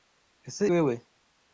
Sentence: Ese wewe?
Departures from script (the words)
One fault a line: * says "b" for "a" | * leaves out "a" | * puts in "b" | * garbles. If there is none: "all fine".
all fine